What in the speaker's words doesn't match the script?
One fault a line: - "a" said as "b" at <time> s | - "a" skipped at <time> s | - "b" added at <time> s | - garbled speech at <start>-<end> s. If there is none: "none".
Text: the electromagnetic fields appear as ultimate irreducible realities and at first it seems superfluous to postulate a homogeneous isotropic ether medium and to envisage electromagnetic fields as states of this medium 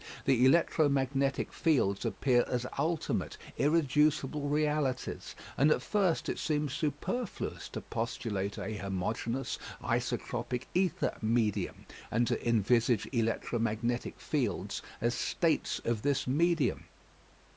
none